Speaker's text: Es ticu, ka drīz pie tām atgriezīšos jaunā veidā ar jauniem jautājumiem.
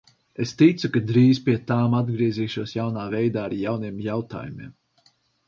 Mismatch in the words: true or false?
false